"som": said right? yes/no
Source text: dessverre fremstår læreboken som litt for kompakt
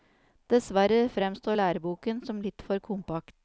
yes